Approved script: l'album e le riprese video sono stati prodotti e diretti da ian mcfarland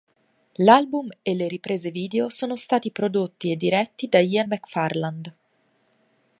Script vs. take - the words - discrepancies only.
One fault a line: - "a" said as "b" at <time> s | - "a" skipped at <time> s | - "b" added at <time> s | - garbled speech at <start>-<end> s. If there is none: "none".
none